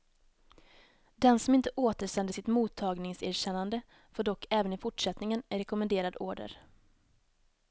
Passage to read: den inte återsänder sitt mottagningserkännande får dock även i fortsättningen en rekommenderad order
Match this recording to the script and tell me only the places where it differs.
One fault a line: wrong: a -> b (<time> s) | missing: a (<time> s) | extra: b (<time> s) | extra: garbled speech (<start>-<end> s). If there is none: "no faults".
extra: som (1.4 s)